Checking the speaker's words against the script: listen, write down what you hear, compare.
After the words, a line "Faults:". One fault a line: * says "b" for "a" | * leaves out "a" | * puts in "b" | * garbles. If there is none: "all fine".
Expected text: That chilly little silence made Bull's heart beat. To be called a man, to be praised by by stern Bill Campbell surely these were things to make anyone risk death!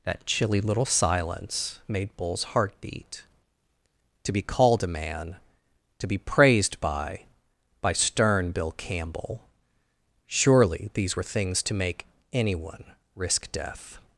That chilly little silence made Bull's heart beat. To be called a man, to be praised by by stern Bill Campbell surely these were things to make anyone risk death!
Faults:
all fine